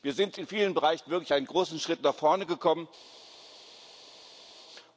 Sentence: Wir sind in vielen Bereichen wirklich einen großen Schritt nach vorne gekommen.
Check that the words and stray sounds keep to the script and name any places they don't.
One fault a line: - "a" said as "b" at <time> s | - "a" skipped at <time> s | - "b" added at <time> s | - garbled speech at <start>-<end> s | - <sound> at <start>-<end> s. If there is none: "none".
none